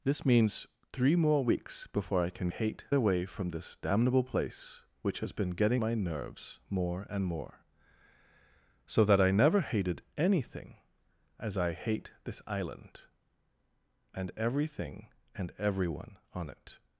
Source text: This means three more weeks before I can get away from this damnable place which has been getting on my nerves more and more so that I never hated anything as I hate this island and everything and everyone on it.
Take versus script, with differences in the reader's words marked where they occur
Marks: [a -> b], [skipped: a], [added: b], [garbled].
This means three more weeks before I can [get -> hate] away from this damnable place which has been getting [skipped: on] my nerves more and more so that I never hated anything as I hate this island and everything and everyone on it.